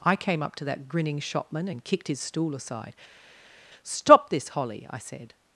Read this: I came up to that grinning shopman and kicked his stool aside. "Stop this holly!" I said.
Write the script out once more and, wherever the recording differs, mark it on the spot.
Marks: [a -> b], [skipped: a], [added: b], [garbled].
I came up to that grinning shopman and kicked his stool aside. "Stop this holly!" I said.